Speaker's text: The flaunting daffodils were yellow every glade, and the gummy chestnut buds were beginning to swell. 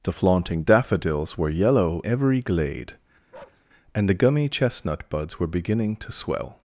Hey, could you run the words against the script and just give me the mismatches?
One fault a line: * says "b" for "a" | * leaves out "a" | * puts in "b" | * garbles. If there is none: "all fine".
all fine